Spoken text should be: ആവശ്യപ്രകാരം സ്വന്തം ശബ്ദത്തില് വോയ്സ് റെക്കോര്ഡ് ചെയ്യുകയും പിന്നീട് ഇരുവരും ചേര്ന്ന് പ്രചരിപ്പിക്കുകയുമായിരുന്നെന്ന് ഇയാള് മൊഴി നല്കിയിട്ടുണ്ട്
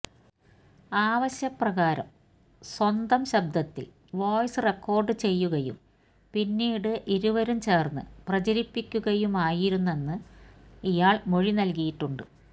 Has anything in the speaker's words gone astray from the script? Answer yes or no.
no